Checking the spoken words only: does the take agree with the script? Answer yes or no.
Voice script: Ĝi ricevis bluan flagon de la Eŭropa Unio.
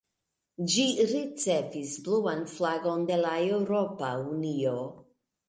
yes